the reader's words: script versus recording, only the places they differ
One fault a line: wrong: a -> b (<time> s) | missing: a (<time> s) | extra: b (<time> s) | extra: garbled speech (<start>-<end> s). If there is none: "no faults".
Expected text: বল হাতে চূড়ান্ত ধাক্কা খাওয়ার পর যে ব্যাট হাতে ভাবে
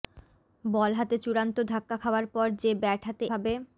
no faults